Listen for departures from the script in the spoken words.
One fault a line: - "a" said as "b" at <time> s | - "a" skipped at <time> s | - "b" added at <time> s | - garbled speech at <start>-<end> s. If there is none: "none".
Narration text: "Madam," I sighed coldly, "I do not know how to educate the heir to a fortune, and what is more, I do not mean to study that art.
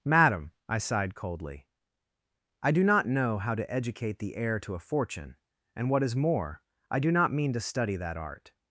none